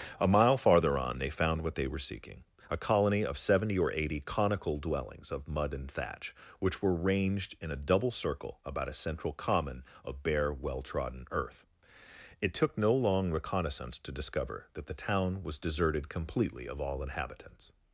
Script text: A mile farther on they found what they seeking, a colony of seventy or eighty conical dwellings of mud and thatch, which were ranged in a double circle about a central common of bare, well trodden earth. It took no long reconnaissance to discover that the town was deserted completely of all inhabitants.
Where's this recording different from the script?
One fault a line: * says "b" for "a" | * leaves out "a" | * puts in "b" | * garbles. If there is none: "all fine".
* puts in "were"